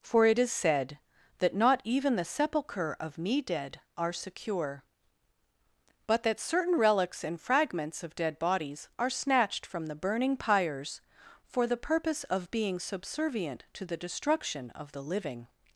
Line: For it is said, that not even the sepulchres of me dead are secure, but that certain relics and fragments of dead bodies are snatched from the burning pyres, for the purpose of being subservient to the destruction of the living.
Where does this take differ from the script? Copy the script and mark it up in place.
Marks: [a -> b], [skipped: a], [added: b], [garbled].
For it is said, that not even the [sepulchres -> sepulchre] of me dead are secure, but that certain relics and fragments of dead bodies are snatched from the burning pyres, for the purpose of being subservient to the destruction of the living.